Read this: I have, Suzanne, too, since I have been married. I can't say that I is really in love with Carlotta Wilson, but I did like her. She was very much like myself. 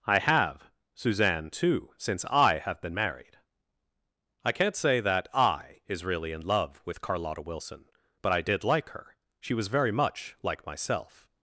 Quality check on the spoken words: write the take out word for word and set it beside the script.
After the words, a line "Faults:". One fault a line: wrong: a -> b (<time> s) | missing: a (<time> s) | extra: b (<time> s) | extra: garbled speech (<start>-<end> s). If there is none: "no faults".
I have, Suzanne, too, since I have been married. I can't say that I is really in love with Carlotta Wilson, but I did like her. She was very much like myself.
Faults:
no faults